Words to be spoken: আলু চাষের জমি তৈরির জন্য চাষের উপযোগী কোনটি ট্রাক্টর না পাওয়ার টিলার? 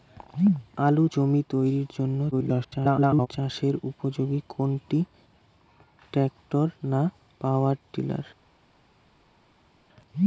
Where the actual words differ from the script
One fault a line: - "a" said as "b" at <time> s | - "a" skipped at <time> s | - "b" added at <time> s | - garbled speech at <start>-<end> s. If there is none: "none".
- "চাষের" skipped at 1.1 s
- garbled speech at 2.3-3.3 s